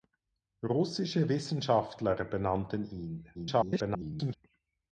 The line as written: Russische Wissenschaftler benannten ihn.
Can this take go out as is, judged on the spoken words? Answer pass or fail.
fail